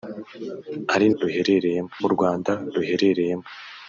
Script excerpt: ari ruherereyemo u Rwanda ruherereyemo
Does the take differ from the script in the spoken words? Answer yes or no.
no